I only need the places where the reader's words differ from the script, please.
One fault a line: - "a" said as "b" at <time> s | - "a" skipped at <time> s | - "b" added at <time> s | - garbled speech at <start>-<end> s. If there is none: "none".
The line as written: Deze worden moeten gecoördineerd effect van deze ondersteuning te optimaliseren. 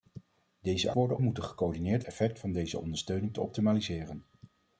none